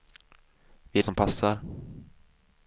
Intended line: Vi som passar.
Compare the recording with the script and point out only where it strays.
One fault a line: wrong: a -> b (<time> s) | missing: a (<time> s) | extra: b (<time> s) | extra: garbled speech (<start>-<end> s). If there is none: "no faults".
no faults